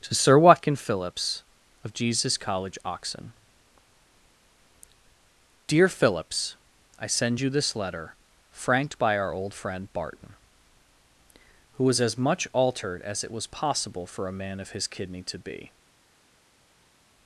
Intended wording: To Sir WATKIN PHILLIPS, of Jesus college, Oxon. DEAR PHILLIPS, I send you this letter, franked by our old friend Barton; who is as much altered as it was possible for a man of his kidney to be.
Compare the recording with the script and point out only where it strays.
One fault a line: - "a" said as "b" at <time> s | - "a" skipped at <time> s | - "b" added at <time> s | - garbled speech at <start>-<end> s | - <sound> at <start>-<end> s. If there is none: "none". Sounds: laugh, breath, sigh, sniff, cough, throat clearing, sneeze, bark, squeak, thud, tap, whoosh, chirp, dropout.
- "is" said as "was" at 11.8 s